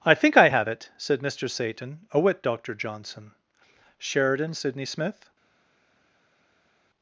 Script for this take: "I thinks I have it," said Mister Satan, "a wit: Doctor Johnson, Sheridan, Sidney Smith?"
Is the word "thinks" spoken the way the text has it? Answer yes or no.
no